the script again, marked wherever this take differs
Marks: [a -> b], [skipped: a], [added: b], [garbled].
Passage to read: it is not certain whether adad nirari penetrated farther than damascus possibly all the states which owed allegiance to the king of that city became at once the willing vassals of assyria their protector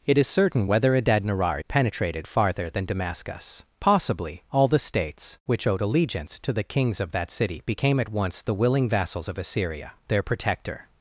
it is [skipped: not] certain whether adad nirari penetrated farther than damascus possibly all the states which owed allegiance to the [king -> kings] of that city became at once the willing vassals of assyria their protector